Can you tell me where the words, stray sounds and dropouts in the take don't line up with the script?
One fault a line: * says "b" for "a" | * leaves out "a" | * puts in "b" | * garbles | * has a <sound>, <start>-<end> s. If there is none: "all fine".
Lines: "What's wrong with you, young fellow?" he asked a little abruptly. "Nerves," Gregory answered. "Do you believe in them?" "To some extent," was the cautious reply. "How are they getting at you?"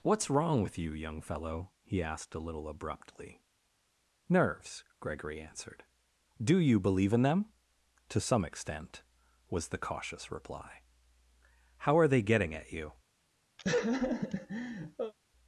* has a laugh, 13.6-15.1 s